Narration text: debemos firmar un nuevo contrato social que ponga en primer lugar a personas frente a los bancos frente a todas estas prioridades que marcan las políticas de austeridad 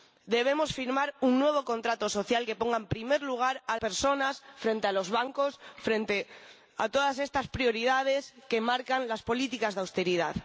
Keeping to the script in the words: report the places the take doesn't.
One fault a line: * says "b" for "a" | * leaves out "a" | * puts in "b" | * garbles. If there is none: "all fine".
all fine